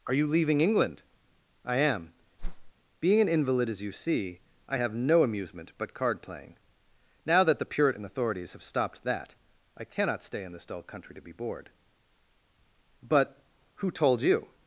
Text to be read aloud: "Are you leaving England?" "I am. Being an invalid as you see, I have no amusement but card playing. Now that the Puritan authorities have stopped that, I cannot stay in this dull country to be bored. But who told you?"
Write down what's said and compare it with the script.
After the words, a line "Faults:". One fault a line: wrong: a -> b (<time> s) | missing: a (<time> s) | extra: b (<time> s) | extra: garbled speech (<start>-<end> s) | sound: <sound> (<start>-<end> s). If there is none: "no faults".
"Are you leaving England?" "I am. Being an invalid as you see, I have no amusement but card playing. Now that the Puritan authorities have stopped that, I cannot stay in this dull country to be bored. But who told you?"
Faults:
sound: whoosh (2.4-2.7 s)